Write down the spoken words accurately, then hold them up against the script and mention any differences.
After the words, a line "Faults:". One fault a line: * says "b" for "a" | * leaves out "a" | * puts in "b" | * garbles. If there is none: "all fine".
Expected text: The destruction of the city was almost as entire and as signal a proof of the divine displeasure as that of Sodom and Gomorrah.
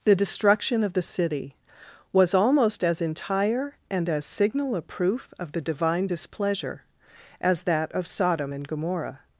The destruction of the city was almost as entire and as signal a proof of the divine displeasure as that of Sodom and Gomorrah.
Faults:
all fine